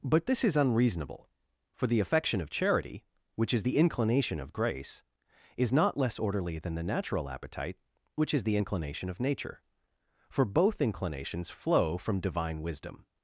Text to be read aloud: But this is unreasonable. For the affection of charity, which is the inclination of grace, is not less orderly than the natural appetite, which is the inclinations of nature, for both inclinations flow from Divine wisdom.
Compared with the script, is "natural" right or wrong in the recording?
right